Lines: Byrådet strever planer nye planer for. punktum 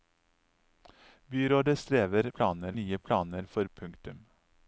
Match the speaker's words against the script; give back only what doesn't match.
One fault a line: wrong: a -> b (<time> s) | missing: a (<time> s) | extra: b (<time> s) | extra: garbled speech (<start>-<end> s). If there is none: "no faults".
no faults